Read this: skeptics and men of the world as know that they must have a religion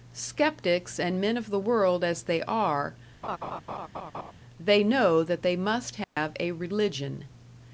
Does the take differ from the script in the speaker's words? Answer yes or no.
yes